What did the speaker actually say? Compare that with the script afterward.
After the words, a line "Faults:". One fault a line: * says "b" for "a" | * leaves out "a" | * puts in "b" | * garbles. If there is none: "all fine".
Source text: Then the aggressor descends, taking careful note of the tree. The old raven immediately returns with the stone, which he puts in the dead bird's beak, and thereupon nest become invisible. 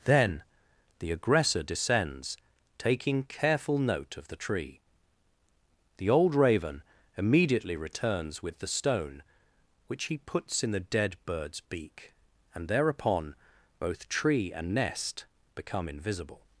Then the aggressor descends, taking careful note of the tree. The old raven immediately returns with the stone, which he puts in the dead bird's beak, and thereupon both tree and nest become invisible.
Faults:
* puts in "both tree and"